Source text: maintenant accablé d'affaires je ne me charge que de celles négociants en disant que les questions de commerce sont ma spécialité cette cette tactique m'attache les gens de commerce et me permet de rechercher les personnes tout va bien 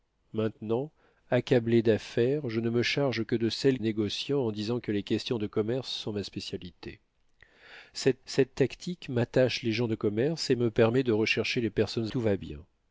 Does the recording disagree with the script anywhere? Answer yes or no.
no